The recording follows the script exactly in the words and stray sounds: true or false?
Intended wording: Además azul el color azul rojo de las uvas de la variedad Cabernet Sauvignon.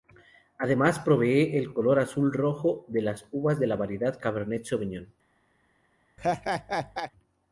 false